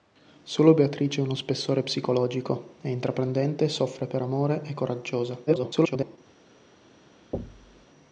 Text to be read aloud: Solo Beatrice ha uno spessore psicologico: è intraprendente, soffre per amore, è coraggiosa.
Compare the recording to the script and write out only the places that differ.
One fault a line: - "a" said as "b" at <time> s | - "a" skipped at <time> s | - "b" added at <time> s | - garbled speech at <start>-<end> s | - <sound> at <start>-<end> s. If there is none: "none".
- garbled speech at 5.5-6.2 s
- thud at 7.3-7.9 s